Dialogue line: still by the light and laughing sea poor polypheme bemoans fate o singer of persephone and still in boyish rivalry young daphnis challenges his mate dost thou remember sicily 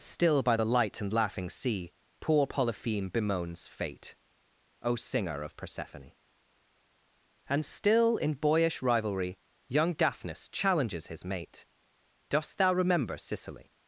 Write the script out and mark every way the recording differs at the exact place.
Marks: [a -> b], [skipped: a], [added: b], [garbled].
still by the light and laughing sea poor polypheme bemoans fate o singer of persephone and still in boyish rivalry young daphnis challenges his mate dost thou remember sicily